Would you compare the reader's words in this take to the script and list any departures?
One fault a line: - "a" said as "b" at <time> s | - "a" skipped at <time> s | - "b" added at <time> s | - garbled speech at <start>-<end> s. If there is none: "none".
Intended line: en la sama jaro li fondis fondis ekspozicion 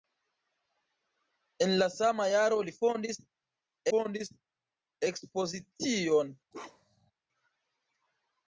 none